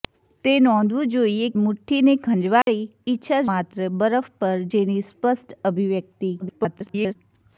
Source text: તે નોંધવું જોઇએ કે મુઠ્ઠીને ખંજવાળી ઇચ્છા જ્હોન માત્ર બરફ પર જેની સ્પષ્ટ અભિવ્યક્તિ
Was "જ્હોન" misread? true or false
true